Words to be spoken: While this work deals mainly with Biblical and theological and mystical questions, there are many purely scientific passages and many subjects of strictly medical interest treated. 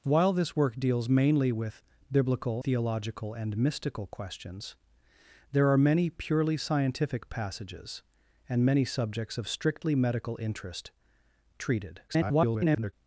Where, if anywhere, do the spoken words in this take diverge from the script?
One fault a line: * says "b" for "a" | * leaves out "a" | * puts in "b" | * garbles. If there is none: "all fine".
* leaves out "and"
* garbles